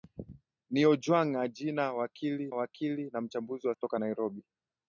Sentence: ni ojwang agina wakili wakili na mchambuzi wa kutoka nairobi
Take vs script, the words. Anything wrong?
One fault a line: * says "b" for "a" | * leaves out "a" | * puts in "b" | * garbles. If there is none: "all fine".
all fine